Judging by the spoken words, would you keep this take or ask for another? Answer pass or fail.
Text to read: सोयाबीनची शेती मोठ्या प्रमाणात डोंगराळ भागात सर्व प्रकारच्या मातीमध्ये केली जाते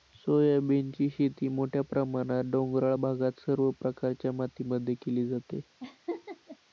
pass